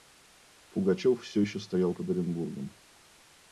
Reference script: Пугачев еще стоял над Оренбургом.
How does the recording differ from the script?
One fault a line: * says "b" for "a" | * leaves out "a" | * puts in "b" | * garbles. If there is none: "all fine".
* puts in "все"
* says "под" for "над"